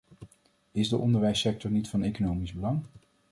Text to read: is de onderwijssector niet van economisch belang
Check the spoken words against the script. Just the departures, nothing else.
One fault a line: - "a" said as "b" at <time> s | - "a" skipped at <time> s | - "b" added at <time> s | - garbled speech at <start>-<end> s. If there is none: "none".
none